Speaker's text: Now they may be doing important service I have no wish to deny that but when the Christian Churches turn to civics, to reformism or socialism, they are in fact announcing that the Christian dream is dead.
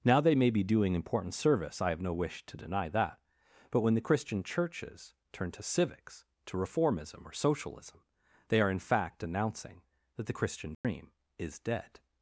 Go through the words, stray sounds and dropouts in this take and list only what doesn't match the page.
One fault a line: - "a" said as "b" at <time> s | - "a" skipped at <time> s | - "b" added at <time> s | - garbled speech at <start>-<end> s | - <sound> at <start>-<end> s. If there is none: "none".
- dropout at 10.7-10.8 s